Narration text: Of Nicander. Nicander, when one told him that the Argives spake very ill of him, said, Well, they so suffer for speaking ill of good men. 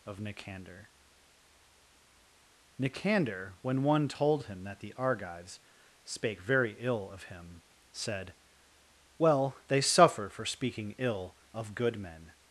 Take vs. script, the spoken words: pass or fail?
fail